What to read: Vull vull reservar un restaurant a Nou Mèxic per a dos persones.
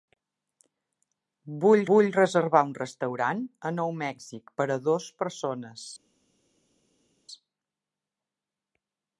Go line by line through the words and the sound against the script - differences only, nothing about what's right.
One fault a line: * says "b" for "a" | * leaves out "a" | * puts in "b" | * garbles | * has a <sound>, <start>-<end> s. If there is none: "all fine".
all fine